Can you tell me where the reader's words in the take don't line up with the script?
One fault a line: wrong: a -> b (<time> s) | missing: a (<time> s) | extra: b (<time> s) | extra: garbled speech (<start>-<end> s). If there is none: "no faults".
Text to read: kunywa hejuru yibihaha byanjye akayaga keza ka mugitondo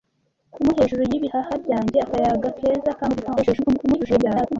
extra: garbled speech (3.4-4.6 s)